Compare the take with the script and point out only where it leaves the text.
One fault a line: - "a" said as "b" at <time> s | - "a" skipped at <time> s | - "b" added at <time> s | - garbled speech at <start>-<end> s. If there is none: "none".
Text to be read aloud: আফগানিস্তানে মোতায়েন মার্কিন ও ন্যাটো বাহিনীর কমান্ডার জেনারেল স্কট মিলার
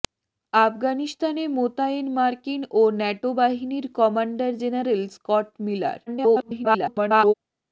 - garbled speech at 6.1-7.3 s